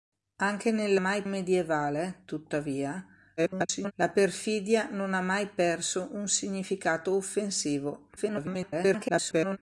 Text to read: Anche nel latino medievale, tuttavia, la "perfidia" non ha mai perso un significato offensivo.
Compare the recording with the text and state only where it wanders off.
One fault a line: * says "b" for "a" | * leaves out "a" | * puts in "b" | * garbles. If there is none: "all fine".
* says "mai" for "latino"
* garbles
* garbles